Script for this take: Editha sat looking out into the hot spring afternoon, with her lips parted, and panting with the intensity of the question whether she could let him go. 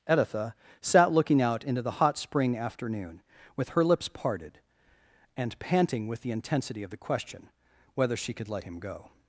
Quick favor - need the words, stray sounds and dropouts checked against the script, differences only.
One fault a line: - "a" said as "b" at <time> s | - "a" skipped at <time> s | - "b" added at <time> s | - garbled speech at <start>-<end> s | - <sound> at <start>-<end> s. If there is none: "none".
none